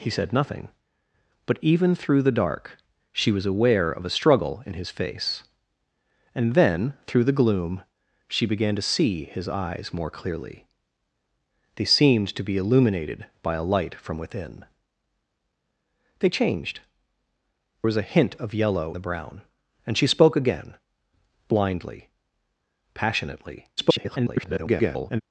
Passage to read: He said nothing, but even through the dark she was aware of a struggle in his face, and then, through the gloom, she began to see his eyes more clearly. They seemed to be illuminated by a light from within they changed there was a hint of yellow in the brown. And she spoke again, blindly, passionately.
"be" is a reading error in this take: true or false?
false